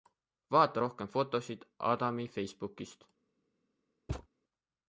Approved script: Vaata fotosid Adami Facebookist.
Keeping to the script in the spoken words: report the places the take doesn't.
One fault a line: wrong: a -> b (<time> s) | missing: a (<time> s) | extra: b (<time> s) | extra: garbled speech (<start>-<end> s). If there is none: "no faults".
extra: rohkem (0.8 s)